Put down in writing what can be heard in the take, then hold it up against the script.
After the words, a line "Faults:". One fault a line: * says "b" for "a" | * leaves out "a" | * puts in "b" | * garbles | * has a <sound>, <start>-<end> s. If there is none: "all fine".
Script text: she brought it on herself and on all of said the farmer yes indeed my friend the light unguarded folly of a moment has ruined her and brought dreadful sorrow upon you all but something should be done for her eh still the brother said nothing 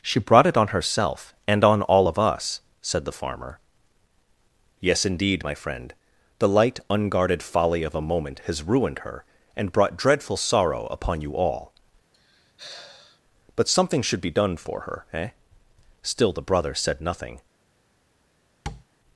she brought it on herself and on all of us said the farmer yes indeed my friend the light unguarded folly of a moment has ruined her and brought dreadful sorrow upon you all but something should be done for her eh still the brother said nothing
Faults:
* puts in "us"
* has a sigh, 12.1-13.2 s
* has a tap, 18.7-18.8 s